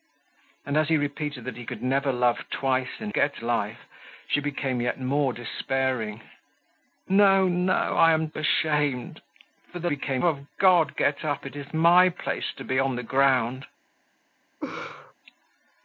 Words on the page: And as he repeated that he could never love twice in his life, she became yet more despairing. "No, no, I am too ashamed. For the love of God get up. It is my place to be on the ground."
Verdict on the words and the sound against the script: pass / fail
fail